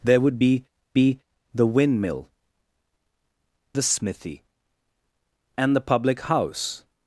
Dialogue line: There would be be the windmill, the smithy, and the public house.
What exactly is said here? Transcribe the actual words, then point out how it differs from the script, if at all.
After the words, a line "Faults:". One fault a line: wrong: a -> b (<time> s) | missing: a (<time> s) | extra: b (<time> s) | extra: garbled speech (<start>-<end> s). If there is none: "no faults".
There would be be the windmill, the smithy, and the public house.
Faults:
no faults